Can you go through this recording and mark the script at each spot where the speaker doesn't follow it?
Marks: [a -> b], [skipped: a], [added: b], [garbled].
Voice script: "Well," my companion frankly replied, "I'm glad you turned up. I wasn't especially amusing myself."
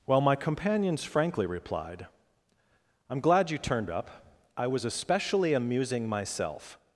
"Well," my [companion -> companions] frankly replied, "I'm glad you turned up. I [wasn't -> was] especially amusing myself."